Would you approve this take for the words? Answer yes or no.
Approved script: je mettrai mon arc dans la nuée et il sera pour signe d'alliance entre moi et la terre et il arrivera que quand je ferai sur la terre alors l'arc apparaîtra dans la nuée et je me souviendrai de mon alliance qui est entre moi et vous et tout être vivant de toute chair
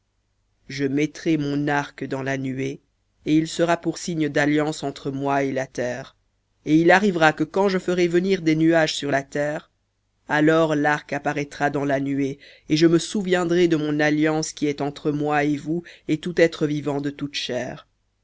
no